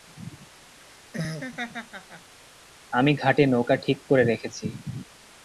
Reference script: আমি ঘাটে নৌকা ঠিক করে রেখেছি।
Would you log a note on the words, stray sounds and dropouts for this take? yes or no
yes